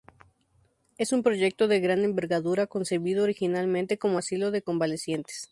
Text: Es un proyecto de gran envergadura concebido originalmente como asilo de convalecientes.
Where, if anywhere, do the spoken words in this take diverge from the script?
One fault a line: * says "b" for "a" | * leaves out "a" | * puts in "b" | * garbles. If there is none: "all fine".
all fine